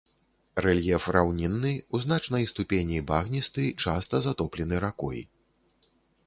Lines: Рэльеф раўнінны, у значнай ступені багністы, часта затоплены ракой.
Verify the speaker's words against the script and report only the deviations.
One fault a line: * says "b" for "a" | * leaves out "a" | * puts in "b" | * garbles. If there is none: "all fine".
all fine